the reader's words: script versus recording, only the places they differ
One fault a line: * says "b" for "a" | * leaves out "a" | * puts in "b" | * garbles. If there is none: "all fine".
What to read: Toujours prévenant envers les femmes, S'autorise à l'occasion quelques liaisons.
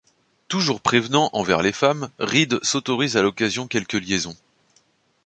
* puts in "Reed"